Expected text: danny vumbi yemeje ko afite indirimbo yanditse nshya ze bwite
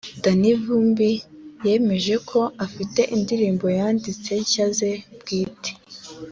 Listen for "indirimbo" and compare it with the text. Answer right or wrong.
right